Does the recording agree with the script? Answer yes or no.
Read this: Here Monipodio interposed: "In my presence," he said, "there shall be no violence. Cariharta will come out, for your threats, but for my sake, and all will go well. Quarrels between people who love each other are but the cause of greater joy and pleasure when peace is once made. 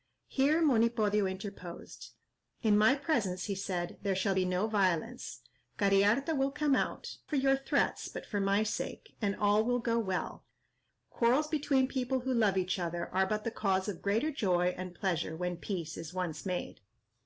yes